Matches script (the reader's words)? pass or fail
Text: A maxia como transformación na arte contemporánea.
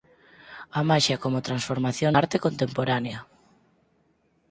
fail